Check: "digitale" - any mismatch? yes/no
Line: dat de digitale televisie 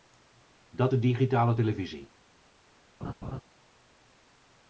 no